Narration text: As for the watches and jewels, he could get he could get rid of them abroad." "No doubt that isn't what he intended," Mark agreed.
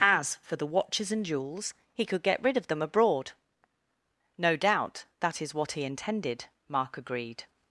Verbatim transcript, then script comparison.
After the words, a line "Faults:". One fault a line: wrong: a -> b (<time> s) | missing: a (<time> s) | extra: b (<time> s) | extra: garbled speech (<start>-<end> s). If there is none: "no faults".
As for the watches and jewels, he could get rid of them abroad." "No doubt that is what he intended," Mark agreed.
Faults:
missing: he could get (2.4 s)
wrong: isn't -> is (5.4 s)